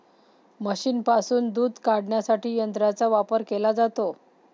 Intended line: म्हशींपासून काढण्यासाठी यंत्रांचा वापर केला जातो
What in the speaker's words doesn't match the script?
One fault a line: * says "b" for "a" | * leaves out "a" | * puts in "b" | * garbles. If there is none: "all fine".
* puts in "दूध"